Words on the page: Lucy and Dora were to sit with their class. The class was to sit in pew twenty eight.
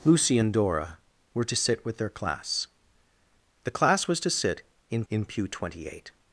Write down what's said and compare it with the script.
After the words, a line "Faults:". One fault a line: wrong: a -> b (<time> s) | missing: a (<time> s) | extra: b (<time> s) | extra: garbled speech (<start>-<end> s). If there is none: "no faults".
Lucy and Dora were to sit with their class. The class was to sit in in pew twenty eight.
Faults:
extra: in (5.1 s)